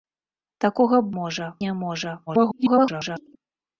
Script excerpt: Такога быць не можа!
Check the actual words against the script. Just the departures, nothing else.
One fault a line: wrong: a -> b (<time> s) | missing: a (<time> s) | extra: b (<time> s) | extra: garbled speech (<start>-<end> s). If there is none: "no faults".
wrong: быць -> можа (1.2 s)
extra: garbled speech (2.3-3.4 s)